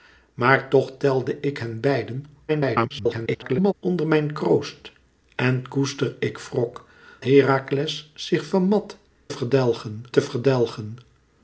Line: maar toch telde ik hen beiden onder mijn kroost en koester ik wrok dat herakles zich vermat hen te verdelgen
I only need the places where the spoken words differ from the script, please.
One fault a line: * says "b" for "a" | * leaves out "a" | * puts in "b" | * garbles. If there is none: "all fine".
* garbles
* leaves out "dat"
* says "verdelgen" for "hen"